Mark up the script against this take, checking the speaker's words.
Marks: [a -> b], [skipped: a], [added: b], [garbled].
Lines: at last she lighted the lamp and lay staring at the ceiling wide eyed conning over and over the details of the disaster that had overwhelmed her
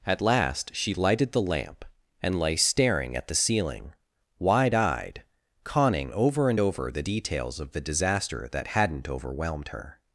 at last she lighted the lamp and lay staring at the ceiling wide eyed conning over and over the details of the disaster that [had -> hadn't] overwhelmed her